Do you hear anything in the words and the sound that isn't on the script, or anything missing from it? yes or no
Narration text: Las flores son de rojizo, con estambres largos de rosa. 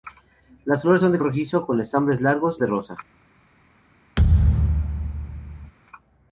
yes